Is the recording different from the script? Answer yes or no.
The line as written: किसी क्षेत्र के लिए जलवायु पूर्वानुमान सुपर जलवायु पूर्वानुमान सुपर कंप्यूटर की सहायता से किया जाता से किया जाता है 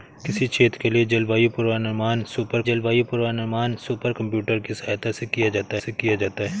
no